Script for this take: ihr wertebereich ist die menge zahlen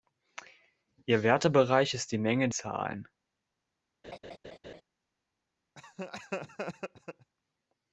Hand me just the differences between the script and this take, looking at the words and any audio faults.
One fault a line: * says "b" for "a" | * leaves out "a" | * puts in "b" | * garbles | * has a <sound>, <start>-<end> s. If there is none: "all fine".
* has a laugh, 4.0-4.8 s
* has a laugh, 5.8-7.3 s